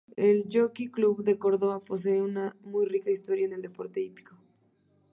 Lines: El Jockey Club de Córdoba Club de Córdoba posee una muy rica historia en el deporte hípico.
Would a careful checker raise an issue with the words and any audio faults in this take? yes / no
yes